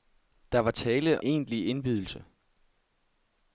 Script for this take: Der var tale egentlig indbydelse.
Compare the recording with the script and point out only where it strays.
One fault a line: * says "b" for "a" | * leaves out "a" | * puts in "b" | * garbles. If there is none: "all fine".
all fine